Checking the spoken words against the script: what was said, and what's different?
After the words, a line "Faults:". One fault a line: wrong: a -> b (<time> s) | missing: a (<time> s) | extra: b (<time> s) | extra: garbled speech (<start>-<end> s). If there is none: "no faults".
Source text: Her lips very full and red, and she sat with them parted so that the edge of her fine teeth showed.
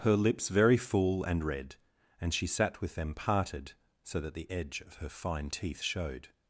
Her lips very full and red, and she sat with them parted so that the edge of her fine teeth showed.
Faults:
no faults